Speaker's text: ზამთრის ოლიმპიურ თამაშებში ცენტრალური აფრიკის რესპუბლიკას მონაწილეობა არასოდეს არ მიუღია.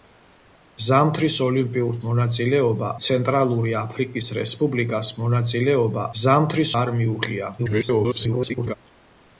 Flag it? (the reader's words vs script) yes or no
yes